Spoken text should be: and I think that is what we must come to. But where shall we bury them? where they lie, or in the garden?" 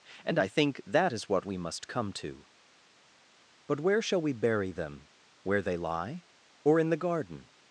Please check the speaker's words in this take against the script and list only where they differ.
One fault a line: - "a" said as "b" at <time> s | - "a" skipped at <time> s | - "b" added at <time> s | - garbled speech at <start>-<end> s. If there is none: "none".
none